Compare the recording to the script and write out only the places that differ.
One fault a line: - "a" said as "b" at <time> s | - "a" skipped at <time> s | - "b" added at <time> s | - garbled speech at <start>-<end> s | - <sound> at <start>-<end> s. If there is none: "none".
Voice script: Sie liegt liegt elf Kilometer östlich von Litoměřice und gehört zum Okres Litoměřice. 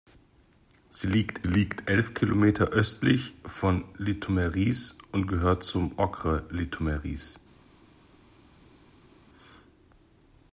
none